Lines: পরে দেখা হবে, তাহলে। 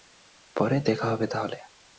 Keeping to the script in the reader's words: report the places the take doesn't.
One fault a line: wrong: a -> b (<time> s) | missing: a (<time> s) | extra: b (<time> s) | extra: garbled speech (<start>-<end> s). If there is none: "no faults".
no faults